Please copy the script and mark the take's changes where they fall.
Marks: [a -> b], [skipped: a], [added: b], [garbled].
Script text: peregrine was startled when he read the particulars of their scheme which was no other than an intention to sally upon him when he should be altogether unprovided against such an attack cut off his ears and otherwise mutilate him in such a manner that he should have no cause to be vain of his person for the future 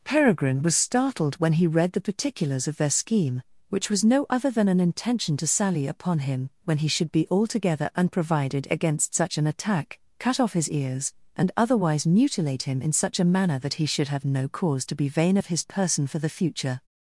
peregrine was startled when he read the particulars of their scheme which was no other than an intention to sally upon him when he should be altogether unprovided against such an attack cut off his ears and otherwise mutilate him in such a manner that he should have no cause to be vain of his person for the future